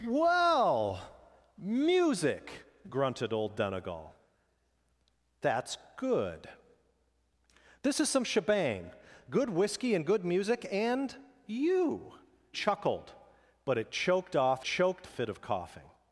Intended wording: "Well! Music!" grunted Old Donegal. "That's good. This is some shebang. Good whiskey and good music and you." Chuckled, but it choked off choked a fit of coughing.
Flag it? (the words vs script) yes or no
no